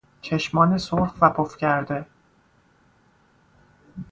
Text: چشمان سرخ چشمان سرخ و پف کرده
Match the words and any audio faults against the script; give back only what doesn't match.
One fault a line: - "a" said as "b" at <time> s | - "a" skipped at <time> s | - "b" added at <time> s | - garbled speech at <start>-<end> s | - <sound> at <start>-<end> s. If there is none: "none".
- "چشمان سرخ" skipped at 1.1 s